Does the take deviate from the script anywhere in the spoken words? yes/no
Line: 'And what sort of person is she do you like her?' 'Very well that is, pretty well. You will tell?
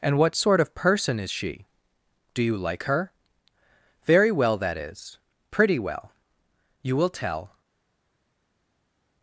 no